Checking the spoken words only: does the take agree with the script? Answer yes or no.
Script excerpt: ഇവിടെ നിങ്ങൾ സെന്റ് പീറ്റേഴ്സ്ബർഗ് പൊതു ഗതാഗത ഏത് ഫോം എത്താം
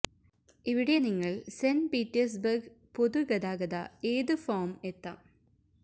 yes